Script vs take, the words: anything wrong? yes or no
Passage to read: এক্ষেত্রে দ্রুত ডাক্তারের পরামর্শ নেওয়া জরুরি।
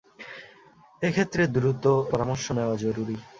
yes